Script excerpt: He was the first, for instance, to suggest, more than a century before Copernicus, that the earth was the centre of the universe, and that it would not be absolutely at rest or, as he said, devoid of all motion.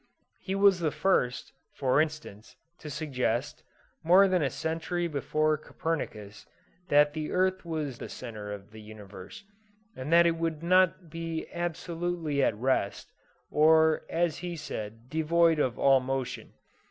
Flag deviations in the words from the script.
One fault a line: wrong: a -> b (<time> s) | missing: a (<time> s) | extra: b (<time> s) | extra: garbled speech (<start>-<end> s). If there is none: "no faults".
no faults